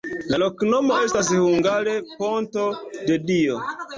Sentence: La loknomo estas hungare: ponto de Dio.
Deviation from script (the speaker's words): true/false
false